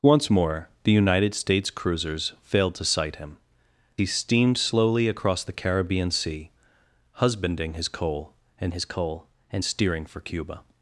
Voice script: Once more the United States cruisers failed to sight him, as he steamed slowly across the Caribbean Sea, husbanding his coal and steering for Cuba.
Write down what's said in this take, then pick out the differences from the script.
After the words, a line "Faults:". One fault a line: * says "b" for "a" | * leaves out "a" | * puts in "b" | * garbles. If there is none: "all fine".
Once more the United States cruisers failed to sight him, he steamed slowly across the Caribbean Sea, husbanding his coal and his coal and steering for Cuba.
Faults:
* leaves out "as"
* puts in "his coal and"